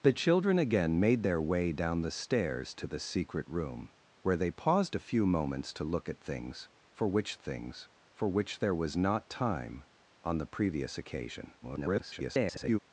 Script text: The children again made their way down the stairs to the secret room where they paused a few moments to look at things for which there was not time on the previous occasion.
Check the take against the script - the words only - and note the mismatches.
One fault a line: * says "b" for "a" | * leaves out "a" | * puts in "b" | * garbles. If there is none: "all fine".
* puts in "things for which"
* garbles